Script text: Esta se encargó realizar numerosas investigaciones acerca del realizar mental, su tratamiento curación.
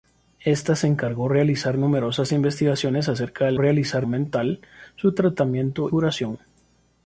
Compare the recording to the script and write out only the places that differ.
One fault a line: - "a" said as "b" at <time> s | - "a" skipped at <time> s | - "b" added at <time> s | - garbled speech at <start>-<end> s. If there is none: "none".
none